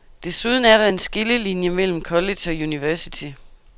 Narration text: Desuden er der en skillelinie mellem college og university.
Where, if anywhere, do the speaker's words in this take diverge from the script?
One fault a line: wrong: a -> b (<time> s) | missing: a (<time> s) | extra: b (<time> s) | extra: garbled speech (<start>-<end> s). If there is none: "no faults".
no faults